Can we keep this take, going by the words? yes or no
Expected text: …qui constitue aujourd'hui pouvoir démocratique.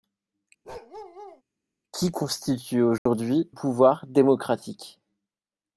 yes